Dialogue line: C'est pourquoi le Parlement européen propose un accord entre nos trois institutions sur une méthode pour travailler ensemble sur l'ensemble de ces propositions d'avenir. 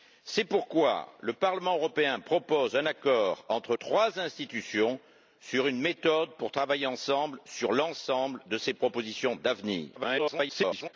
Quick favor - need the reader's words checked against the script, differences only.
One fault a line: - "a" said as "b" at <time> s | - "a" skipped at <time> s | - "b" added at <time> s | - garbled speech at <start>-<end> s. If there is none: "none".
- "nos" skipped at 3.8 s
- garbled speech at 10.0-10.9 s